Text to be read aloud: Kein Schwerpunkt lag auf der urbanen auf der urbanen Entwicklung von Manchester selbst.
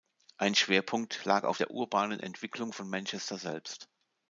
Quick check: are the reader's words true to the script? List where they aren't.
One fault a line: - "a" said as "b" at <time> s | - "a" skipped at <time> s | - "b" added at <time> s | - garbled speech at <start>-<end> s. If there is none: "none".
- "Kein" said as "Ein" at 0.4 s
- "auf der urbanen" skipped at 2.2 s